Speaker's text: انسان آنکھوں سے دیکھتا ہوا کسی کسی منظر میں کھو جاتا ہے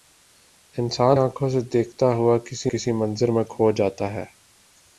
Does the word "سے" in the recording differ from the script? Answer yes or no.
no